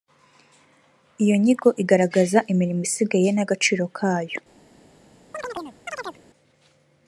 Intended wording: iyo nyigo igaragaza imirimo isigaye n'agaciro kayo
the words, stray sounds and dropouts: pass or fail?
fail